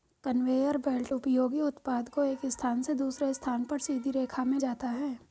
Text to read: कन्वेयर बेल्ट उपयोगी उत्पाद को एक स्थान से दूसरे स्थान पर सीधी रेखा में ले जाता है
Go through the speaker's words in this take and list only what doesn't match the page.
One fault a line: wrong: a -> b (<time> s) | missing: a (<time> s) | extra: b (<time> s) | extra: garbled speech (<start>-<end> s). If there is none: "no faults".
missing: ले (4.6 s)